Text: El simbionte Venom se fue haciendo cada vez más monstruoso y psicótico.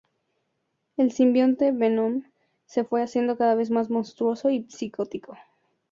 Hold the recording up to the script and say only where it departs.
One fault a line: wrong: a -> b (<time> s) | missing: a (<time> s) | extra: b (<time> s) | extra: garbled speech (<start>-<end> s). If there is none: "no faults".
no faults